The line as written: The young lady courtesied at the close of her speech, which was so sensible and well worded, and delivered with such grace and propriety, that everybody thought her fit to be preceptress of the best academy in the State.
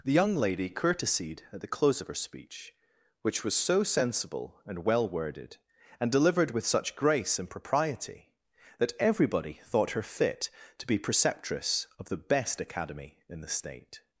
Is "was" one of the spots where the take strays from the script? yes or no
no